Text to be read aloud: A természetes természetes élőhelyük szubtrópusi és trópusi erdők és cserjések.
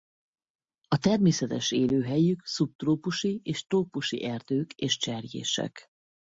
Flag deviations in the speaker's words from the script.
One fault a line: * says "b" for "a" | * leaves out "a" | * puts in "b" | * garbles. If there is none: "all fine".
* leaves out "természetes"